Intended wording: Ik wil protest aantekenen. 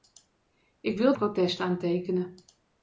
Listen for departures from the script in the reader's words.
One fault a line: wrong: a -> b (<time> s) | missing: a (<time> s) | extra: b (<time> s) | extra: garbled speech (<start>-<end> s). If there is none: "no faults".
no faults